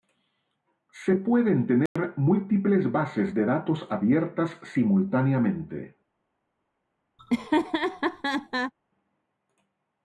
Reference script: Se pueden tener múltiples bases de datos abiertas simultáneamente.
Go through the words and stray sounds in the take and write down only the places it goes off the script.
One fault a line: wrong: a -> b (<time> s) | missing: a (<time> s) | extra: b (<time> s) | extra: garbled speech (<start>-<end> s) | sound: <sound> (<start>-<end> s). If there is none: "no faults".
sound: dropout (1.9-2.0 s)
sound: laugh (7.2-8.7 s)